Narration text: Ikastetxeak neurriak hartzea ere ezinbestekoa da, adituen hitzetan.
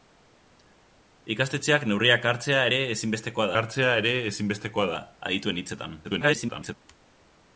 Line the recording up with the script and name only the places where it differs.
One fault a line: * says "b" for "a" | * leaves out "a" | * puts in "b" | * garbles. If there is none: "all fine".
* puts in "hartzea ere ezinbestekoa"
* garbles